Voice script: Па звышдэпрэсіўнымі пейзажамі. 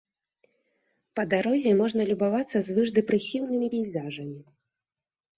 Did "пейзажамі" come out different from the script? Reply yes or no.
no